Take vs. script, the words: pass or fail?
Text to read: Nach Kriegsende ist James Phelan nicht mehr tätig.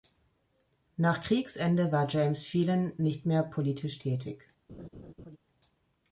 fail